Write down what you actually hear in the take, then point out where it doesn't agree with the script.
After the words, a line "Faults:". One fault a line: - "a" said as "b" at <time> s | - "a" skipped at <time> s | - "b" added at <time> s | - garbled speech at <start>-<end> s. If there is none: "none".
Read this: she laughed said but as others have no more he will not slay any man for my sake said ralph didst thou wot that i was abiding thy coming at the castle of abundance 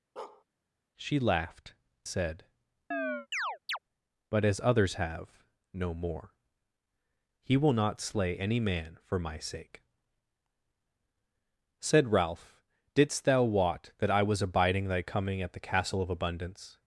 she laughed said but as others have no more he will not slay any man for my sake said ralph didst thou wot that i was abiding thy coming at the castle of abundance
Faults:
none